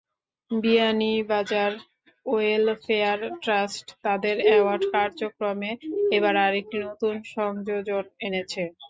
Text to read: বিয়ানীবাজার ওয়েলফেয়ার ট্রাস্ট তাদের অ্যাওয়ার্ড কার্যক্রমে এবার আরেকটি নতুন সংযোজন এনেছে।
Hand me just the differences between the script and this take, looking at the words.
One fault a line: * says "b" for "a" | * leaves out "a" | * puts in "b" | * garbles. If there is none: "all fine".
all fine